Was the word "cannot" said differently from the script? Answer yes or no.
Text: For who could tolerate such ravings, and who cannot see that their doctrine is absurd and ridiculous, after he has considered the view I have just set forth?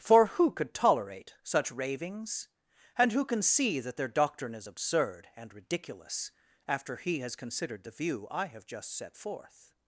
yes